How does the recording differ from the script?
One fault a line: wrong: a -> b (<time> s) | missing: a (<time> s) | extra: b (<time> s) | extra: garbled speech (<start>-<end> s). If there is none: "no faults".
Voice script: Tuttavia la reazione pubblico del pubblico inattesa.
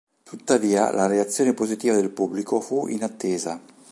wrong: pubblico -> positiva (1.5 s)
extra: fu (2.6 s)